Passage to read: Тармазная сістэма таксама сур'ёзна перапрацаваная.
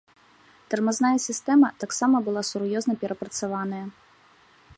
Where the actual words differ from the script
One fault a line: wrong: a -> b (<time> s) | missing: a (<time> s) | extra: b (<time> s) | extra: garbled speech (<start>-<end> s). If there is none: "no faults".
extra: была (2.3 s)